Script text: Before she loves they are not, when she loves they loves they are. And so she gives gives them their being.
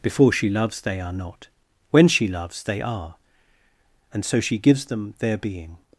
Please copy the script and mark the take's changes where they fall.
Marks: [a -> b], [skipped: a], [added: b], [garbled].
Before she loves they are not, when she loves they [skipped: loves they] are. And so she gives [skipped: gives] them their being.